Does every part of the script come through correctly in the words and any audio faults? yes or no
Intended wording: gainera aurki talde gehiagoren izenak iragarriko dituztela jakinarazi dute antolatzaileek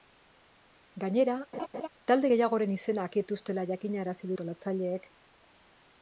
no